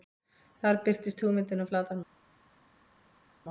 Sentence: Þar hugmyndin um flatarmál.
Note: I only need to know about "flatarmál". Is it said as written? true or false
true